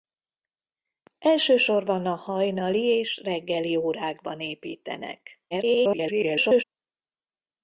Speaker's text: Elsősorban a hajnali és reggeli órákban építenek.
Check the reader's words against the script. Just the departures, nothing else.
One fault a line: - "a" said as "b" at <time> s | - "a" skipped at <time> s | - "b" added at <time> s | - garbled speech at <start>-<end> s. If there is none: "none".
- garbled speech at 5.5-6.6 s